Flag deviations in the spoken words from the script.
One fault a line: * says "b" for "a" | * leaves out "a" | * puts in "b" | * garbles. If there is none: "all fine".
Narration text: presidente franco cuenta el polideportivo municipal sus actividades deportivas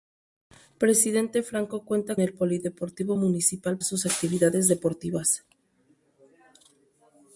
all fine